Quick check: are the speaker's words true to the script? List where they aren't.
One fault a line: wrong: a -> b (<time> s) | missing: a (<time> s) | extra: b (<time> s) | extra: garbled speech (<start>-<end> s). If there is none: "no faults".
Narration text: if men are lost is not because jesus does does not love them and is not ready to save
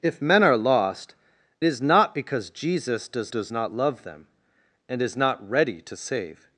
no faults